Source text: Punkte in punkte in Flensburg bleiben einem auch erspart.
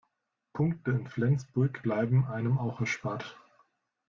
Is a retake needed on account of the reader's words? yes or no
yes